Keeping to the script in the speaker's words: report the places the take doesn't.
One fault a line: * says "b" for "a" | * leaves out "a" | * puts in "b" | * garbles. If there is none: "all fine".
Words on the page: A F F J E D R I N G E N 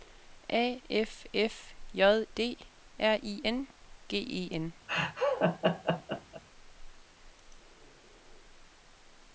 * leaves out "E"